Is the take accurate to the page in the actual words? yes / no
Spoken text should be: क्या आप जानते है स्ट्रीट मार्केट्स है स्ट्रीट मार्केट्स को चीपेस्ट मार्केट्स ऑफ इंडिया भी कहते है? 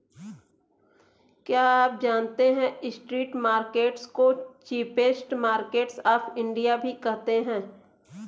no